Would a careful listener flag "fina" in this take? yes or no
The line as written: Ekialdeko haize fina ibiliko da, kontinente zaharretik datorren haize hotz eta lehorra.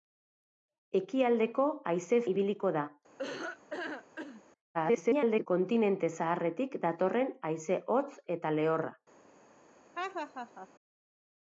yes